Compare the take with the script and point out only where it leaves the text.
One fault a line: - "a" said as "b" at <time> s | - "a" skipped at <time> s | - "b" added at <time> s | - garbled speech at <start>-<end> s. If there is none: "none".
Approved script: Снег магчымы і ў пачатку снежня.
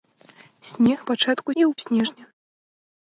- "магчымы" said as "пачатку" at 1.1 s
- "пачатку" skipped at 1.7 s